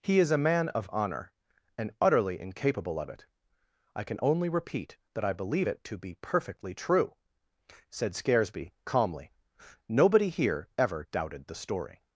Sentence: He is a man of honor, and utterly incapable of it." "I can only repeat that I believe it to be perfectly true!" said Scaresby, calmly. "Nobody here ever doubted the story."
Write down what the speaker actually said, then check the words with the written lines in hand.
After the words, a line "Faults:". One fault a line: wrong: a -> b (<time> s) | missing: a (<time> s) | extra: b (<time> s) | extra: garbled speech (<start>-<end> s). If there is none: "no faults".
He is a man of honor, and utterly incapable of it." "I can only repeat that I believe it to be perfectly true!" said Scaresby, calmly. "Nobody here ever doubted the story."
Faults:
no faults